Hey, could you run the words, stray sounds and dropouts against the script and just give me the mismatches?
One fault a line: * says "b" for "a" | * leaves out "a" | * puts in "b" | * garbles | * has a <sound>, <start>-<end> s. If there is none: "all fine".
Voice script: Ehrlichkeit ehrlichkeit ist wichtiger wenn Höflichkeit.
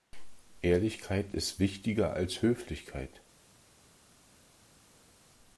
* leaves out "ehrlichkeit"
* says "als" for "wenn"